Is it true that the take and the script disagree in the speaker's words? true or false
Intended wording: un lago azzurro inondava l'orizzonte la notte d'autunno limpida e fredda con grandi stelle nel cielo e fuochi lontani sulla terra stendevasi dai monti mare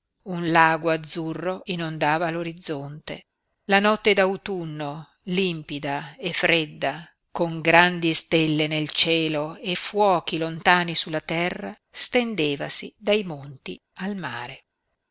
true